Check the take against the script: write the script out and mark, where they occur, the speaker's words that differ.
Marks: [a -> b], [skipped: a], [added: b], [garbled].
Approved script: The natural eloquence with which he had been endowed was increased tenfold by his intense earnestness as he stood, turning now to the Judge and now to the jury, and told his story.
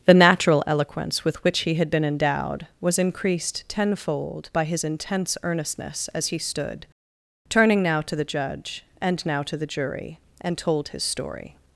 The natural eloquence with which he had been endowed was increased tenfold by his intense earnestness as he stood, turning now to the Judge and now to the jury, and told his story.